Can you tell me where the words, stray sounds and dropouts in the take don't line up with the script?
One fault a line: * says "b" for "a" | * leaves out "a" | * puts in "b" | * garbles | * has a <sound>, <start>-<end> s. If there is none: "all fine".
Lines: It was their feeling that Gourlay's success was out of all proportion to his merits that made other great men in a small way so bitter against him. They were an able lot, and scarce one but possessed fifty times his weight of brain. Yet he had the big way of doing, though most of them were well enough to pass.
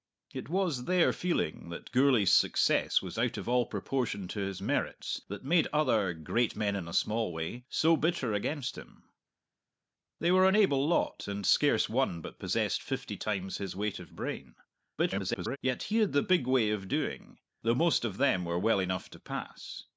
* garbles